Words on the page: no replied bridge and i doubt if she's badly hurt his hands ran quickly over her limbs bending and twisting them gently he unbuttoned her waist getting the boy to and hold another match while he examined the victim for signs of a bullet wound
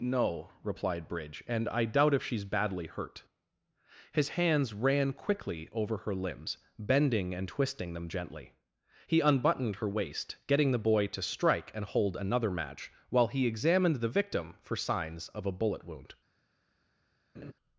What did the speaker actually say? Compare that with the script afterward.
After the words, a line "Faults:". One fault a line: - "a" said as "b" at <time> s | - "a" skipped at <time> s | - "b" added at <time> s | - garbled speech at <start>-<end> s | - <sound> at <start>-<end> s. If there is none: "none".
no replied bridge and i doubt if she's badly hurt his hands ran quickly over her limbs bending and twisting them gently he unbuttoned her waist getting the boy to strike and hold another match while he examined the victim for signs of a bullet wound
Faults:
- "strike" added at 11.2 s
- laugh at 17.3-17.5 s